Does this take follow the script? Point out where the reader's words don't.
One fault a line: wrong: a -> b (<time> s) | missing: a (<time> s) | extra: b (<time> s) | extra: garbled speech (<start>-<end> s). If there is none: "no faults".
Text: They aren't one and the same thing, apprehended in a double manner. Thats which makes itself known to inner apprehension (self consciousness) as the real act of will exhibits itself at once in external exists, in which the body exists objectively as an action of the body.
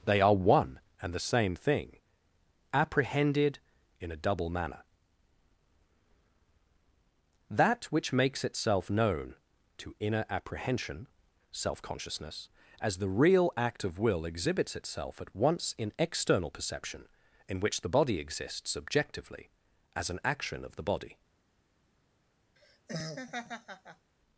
wrong: aren't -> are (0.2 s)
wrong: Thats -> That (7.5 s)
wrong: exists -> perception (16.5 s)